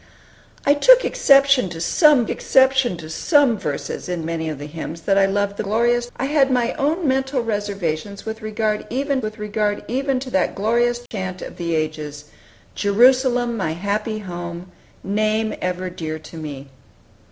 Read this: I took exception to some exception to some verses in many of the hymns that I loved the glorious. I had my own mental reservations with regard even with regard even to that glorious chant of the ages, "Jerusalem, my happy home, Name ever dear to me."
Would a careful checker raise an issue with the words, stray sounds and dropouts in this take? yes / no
yes